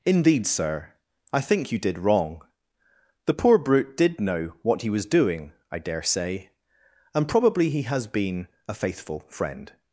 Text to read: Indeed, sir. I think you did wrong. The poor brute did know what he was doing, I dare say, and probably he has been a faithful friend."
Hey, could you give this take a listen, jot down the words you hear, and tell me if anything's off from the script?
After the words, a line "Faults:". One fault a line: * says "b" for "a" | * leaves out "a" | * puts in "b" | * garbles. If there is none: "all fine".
Indeed, sir. I think you did wrong. The poor brute did know what he was doing, I dare say, and probably he has been a faithful friend."
Faults:
all fine